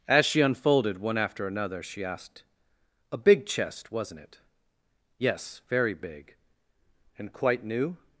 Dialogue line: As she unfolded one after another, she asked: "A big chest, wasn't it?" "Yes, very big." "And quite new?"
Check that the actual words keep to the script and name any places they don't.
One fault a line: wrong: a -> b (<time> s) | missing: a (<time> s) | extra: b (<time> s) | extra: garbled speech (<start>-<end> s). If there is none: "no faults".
no faults